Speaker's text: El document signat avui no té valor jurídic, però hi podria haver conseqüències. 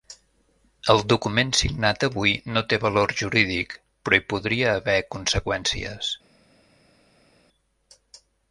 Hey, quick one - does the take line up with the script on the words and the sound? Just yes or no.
yes